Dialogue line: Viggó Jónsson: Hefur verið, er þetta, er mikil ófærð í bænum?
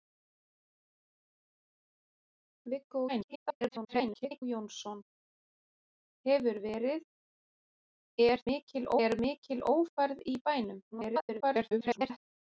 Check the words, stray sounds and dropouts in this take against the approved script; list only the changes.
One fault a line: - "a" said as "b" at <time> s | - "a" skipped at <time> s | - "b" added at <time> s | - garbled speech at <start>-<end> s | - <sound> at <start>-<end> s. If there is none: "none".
- garbled speech at 3.1-4.4 s
- "þetta" said as "mikil" at 8.5 s
- garbled speech at 10.9-12.2 s